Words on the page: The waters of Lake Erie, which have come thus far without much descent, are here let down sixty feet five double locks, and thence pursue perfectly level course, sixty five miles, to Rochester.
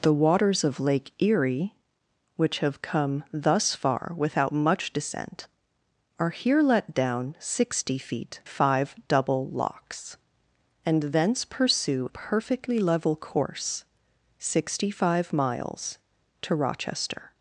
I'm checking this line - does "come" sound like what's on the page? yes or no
yes